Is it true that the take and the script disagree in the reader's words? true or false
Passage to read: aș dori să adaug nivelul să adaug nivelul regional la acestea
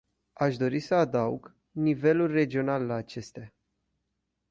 true